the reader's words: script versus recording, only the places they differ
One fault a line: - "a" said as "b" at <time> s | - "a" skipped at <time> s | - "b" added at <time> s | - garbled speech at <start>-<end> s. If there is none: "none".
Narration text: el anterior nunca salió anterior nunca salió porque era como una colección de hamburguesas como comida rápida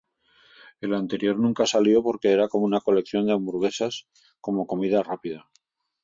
- "anterior nunca salió" skipped at 2.0 s